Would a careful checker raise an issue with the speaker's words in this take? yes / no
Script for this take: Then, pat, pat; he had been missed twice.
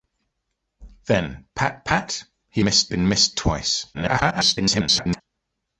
yes